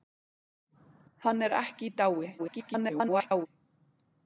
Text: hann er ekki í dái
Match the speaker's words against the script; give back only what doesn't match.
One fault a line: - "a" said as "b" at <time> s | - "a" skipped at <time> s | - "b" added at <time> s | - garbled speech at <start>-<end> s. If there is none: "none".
- garbled speech at 2.4-3.5 s